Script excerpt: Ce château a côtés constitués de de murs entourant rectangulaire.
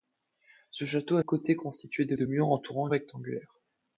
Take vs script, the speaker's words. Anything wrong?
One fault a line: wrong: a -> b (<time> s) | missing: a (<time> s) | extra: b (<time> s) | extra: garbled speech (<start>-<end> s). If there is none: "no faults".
no faults